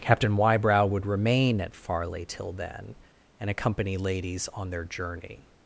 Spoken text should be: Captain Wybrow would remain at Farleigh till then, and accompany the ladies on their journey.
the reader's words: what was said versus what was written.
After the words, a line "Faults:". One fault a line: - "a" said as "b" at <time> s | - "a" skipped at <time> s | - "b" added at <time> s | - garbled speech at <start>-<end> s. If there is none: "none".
Captain Wybrow would remain at Farleigh till then, and accompany ladies on their journey.
Faults:
- "the" skipped at 4.0 s